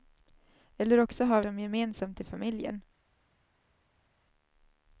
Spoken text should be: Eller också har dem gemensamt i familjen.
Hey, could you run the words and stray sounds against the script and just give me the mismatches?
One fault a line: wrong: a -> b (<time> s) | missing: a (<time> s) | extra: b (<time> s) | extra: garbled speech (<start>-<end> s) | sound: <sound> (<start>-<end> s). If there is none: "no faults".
no faults